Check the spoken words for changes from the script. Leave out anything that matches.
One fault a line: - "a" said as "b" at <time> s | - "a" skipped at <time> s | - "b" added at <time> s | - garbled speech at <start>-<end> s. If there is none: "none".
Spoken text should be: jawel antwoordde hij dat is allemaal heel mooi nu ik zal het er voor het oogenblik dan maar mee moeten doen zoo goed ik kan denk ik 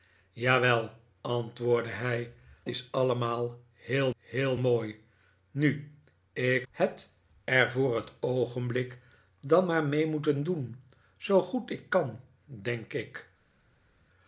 - "dat" skipped at 2.3 s
- "heel" added at 4.2 s
- "zal" skipped at 6.7 s